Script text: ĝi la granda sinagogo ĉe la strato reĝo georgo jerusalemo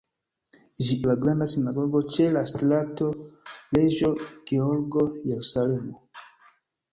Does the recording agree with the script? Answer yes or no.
yes